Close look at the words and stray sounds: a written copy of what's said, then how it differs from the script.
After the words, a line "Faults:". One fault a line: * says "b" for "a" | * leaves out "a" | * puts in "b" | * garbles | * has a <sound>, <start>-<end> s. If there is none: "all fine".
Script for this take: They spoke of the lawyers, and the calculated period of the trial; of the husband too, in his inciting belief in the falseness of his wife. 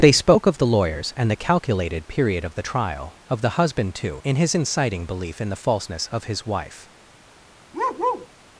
They spoke of the lawyers, and the calculated period of the trial; of the husband too, in his inciting belief in the falseness of his wife.
Faults:
* has a bark, 7.7-8.3 s